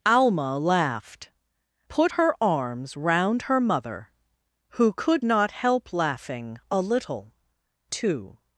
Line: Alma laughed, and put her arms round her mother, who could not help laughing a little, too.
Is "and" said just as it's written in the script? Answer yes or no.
no